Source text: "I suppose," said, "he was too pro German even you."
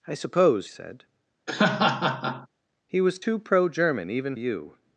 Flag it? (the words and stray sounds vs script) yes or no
yes